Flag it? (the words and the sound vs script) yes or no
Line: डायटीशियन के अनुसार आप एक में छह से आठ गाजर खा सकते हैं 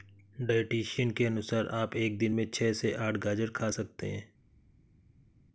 yes